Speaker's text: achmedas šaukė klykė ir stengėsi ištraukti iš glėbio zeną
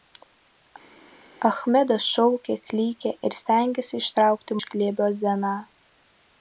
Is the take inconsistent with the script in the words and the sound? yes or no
no